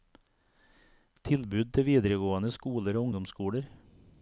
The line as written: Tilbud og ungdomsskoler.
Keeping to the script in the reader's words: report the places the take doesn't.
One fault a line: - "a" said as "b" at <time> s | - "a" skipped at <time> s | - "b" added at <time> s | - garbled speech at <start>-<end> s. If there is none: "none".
- "til videregående skoler" added at 1.8 s